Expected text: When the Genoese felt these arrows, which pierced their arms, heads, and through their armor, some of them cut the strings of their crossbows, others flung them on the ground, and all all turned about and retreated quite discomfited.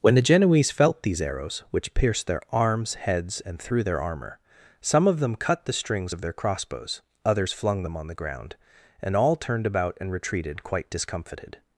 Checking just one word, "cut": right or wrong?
right